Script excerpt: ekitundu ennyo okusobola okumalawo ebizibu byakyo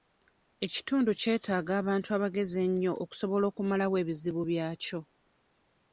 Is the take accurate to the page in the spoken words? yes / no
no